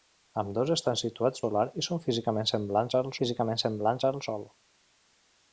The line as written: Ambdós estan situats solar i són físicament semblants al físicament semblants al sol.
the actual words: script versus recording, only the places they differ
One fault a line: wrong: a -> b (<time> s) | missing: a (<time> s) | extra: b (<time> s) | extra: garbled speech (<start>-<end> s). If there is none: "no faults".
no faults